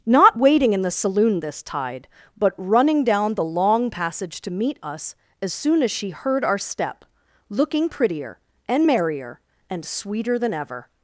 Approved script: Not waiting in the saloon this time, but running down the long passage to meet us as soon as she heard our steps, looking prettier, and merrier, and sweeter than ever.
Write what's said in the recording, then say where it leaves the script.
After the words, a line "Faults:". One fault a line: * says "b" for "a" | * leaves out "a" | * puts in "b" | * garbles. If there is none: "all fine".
Not waiting in the saloon this tide, but running down the long passage to meet us as soon as she heard our step, looking prettier, and merrier, and sweeter than ever.
Faults:
* says "tide" for "time"
* says "step" for "steps"